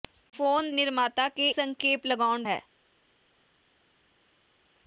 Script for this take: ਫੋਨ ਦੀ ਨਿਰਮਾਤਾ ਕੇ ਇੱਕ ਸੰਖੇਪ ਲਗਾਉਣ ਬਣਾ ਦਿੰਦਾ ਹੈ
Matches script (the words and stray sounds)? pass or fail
fail